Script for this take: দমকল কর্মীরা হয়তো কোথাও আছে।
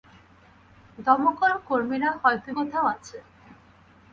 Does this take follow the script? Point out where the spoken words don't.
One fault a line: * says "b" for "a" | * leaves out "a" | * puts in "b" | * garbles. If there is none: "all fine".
all fine